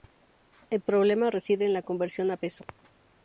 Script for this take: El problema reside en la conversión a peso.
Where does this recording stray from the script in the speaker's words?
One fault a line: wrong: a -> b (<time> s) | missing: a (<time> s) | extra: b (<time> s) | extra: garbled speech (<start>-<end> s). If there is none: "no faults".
no faults